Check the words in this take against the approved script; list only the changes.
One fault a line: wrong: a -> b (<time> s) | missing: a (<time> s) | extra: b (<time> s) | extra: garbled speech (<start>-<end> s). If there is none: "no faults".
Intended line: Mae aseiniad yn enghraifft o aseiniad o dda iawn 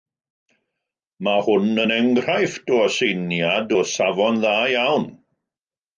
wrong: aseiniad -> hwn (1.5 s)
extra: safon (3.9 s)